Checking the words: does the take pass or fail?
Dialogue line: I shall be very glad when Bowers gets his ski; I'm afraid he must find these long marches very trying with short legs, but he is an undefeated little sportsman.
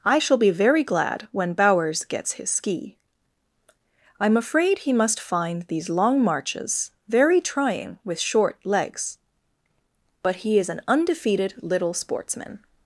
pass